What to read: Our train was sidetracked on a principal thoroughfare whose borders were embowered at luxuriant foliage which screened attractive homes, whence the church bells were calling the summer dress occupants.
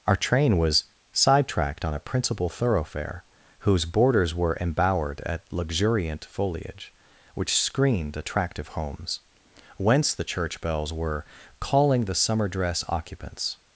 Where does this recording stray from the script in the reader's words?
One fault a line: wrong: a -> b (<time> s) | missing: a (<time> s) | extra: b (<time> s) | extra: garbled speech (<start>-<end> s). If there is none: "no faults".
no faults